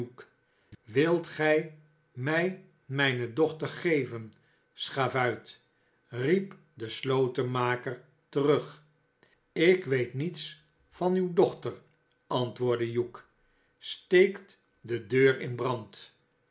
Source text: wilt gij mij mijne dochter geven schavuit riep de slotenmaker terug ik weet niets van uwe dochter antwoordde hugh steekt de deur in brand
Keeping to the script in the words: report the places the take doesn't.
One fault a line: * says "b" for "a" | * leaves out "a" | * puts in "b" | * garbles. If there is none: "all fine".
all fine